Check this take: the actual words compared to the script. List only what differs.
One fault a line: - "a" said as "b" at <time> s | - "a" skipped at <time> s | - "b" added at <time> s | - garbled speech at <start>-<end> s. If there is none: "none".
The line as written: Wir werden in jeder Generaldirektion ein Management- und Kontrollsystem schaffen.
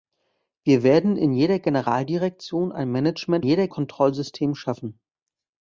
- "und" said as "jeder" at 3.4 s